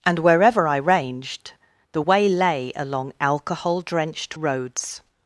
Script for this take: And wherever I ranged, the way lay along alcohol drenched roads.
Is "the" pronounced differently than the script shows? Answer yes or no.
no